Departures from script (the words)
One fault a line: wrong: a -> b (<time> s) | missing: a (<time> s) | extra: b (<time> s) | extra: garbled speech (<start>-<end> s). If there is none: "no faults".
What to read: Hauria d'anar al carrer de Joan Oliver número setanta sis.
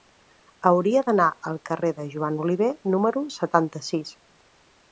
no faults